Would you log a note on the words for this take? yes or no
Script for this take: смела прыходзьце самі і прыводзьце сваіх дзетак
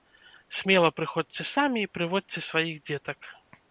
no